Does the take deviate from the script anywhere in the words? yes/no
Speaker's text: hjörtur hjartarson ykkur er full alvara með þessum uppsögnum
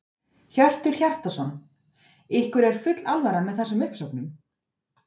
no